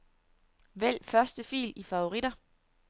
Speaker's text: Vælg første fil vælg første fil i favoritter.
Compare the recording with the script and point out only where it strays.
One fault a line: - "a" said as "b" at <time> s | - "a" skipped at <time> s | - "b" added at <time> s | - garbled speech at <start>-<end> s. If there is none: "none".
- "vælg første fil" skipped at 1.7 s